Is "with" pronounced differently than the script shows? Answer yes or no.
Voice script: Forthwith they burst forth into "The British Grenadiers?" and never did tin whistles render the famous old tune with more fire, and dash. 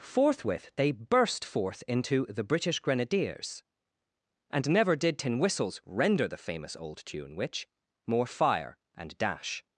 yes